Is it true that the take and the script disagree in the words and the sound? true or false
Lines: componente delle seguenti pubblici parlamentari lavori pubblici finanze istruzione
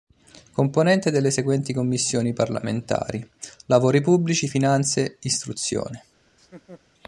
true